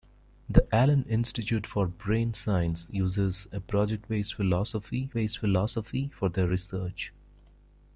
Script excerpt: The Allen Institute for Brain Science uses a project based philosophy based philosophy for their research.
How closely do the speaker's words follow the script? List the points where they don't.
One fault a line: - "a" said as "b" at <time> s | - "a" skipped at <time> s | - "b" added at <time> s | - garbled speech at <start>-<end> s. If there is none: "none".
none